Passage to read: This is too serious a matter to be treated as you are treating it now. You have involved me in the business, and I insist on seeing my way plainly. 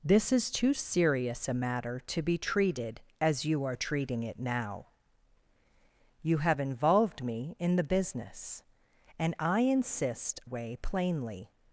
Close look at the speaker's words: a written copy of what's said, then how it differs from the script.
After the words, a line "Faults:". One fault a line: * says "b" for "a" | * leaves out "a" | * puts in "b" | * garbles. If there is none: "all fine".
This is too serious a matter to be treated as you are treating it now. You have involved me in the business, and I insist way plainly.
Faults:
* leaves out "on seeing my"